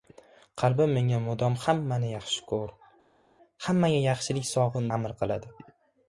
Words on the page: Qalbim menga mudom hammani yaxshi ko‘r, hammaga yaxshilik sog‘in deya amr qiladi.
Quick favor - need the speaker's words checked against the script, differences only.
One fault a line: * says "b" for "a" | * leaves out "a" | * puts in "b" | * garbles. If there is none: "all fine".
* leaves out "deya"